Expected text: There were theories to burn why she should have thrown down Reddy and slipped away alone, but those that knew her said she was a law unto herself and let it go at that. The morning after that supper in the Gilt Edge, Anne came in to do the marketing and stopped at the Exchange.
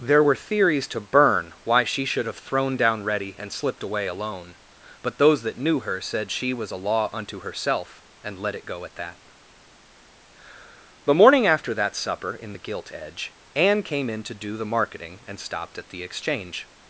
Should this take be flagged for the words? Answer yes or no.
no